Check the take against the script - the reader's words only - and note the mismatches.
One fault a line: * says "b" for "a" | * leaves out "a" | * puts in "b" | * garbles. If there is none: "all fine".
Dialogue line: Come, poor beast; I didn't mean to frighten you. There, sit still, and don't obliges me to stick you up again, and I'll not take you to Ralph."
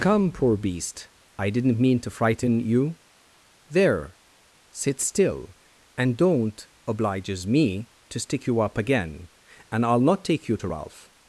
all fine